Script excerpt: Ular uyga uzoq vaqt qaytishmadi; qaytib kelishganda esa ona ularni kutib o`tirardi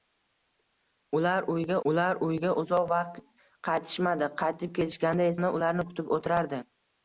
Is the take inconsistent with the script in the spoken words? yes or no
yes